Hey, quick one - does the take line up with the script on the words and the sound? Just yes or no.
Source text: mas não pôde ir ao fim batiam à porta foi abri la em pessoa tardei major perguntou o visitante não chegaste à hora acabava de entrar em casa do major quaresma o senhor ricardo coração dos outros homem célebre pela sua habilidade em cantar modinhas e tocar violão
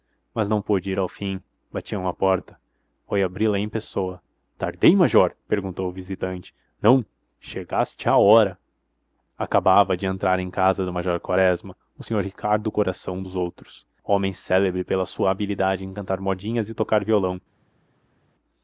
yes